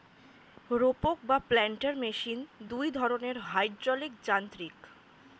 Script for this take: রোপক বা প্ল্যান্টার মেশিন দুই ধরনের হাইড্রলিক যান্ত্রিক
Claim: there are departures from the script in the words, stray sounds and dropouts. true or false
false